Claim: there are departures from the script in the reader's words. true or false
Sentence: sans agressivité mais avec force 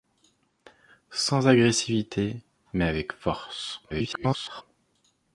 true